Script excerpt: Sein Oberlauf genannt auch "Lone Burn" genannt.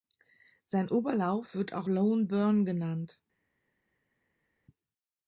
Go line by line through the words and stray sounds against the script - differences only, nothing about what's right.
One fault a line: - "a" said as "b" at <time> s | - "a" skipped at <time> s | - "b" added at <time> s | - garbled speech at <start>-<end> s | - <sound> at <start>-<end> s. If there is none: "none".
- "genannt" said as "wird" at 1.5 s